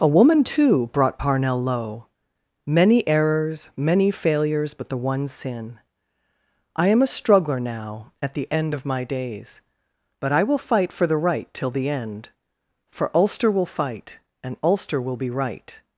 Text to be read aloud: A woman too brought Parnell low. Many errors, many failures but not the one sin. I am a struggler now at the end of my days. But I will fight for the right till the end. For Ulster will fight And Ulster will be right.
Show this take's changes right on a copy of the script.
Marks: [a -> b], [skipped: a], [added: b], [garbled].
A woman too brought Parnell low. Many errors, many failures but [skipped: not] the one sin. I am a struggler now at the end of my days. But I will fight for the right till the end. For Ulster will fight And Ulster will be right.